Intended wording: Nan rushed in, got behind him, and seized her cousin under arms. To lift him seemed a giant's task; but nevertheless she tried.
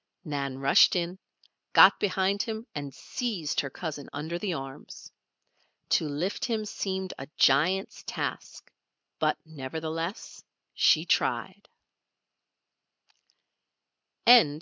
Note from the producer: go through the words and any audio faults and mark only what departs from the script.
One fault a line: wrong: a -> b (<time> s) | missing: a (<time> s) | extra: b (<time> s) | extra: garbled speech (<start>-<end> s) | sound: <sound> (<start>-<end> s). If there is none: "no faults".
extra: the (4.4 s)